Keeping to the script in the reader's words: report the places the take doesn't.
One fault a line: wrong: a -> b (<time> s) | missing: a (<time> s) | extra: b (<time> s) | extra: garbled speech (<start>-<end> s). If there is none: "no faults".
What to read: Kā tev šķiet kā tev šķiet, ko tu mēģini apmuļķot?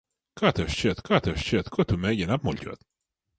no faults